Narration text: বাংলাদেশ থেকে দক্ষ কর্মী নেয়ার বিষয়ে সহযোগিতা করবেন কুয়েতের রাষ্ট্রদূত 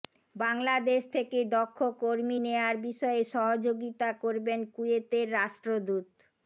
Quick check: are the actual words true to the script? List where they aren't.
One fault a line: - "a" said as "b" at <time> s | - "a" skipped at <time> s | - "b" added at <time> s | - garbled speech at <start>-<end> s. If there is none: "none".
none